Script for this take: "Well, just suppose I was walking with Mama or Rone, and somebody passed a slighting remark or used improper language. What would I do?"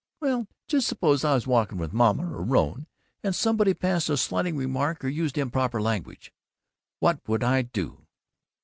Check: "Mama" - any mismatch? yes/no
no